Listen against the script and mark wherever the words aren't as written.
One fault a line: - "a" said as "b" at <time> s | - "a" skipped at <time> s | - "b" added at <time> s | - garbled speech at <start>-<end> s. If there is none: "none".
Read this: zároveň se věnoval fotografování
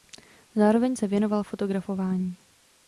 none